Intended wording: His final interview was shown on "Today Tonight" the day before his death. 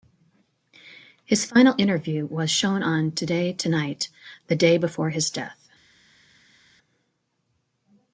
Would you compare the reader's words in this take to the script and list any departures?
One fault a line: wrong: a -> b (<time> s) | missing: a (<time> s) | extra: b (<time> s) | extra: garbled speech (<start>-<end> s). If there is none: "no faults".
no faults